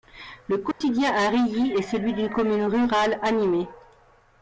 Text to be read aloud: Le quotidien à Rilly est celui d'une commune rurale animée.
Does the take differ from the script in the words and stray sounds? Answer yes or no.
yes